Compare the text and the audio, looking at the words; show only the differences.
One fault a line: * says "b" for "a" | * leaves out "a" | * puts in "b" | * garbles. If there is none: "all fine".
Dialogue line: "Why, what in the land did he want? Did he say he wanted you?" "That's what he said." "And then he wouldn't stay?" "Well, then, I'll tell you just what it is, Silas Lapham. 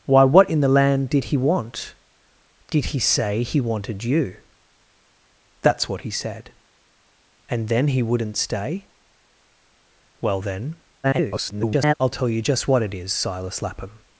* garbles